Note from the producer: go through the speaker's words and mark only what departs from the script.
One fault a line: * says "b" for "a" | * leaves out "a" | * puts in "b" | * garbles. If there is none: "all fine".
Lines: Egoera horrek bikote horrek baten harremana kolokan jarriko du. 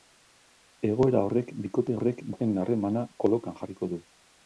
all fine